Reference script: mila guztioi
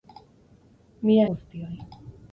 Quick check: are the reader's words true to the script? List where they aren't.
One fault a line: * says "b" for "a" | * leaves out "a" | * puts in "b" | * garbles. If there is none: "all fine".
all fine